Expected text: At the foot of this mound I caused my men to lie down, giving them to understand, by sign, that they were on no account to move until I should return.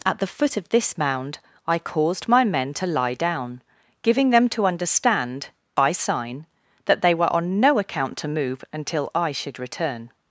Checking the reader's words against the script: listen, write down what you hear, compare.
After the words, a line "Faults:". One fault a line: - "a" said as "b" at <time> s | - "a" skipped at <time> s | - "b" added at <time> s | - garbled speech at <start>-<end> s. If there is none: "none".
At the foot of this mound I caused my men to lie down, giving them to understand, by sign, that they were on no account to move until I should return.
Faults:
none